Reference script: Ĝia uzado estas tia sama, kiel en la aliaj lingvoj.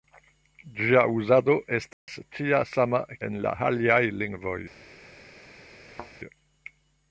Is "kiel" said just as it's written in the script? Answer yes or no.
no